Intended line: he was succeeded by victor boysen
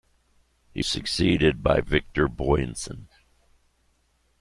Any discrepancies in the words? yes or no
yes